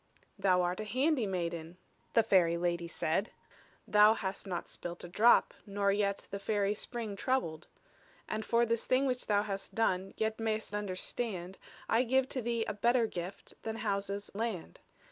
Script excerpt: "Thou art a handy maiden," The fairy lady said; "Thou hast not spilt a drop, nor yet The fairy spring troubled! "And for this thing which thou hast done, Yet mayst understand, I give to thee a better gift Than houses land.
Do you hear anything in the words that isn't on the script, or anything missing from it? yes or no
no